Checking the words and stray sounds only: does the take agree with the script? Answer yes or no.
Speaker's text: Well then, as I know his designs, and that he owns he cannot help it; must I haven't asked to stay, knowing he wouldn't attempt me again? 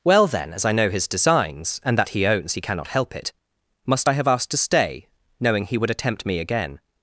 no